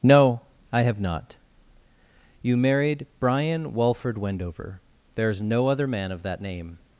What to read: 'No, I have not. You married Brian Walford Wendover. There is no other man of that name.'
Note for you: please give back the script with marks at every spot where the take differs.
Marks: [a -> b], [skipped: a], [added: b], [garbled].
'No, I have not. You married Brian Walford Wendover. There is no other man of that name.'